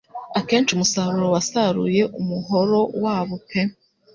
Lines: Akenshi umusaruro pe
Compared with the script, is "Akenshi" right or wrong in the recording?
right